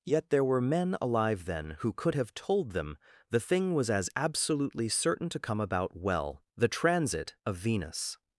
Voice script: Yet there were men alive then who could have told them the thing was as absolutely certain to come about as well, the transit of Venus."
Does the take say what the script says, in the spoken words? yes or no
no